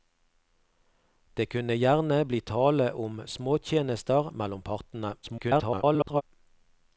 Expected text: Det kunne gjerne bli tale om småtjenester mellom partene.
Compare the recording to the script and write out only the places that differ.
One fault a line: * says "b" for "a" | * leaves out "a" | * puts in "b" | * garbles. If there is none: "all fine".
* garbles